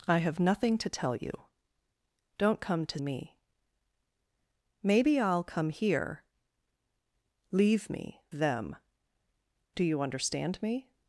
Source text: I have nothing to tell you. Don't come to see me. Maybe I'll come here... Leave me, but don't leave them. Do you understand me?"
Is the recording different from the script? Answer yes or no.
yes